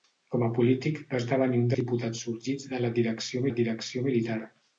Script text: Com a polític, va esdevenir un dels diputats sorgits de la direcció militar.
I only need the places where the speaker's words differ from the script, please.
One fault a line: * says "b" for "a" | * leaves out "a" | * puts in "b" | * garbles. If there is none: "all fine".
* leaves out "dels"
* puts in "la direcció"